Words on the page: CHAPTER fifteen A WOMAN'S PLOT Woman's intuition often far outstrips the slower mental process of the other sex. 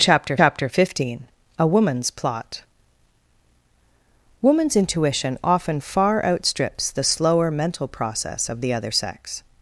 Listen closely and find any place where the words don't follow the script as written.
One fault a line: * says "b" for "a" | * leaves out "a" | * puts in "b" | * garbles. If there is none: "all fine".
* puts in "chapter"